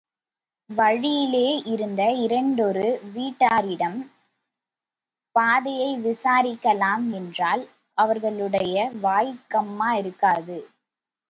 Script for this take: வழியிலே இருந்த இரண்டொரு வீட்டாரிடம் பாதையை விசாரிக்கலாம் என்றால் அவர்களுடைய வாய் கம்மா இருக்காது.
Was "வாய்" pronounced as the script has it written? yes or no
yes